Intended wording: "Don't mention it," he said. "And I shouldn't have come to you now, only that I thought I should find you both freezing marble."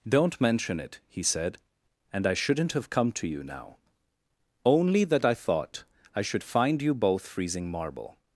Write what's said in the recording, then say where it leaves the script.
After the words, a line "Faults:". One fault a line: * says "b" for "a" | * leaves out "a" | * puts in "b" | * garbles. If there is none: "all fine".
"Don't mention it," he said. "And I shouldn't have come to you now, only that I thought I should find you both freezing marble."
Faults:
all fine